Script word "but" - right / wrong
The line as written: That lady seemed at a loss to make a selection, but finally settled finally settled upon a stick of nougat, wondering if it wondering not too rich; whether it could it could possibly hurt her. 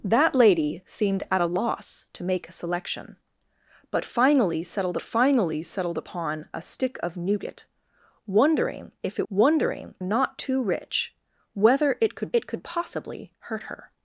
right